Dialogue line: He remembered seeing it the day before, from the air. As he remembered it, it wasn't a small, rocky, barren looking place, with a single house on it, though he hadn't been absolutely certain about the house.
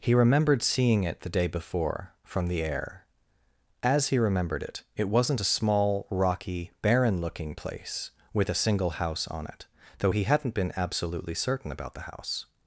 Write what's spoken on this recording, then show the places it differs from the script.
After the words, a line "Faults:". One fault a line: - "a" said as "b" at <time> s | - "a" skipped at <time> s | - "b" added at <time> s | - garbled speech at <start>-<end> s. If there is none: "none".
He remembered seeing it the day before, from the air. As he remembered it, it wasn't a small, rocky, barren looking place, with a single house on it, though he hadn't been absolutely certain about the house.
Faults:
none